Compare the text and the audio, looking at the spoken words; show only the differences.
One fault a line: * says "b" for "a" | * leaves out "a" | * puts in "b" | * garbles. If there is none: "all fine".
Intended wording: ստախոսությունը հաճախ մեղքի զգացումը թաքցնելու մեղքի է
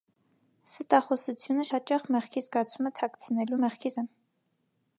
all fine